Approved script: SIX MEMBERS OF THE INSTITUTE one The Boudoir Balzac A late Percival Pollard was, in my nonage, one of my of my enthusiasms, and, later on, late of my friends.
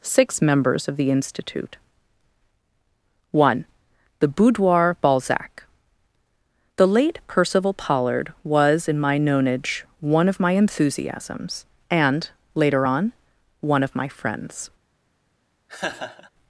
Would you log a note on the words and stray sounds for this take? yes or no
yes